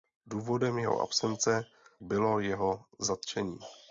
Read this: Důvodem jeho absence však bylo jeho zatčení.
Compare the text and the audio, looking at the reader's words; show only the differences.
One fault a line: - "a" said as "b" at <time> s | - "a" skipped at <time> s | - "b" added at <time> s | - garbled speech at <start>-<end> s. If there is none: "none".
- "však" skipped at 1.6 s